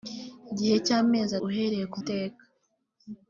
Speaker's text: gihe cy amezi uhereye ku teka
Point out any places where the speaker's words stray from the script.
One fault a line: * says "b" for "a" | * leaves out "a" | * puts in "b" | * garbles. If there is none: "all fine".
all fine